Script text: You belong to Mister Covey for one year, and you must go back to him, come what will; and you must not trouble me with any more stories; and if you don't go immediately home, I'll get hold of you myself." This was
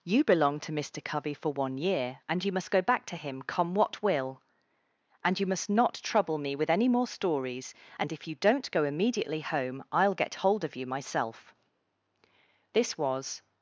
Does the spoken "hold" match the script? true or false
true